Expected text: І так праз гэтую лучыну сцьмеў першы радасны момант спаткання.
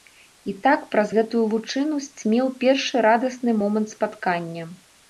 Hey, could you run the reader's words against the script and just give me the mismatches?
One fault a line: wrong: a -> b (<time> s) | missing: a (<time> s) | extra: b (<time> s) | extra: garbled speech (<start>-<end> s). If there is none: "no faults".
no faults